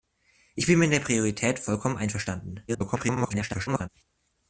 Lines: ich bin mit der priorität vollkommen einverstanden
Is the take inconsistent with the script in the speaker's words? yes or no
yes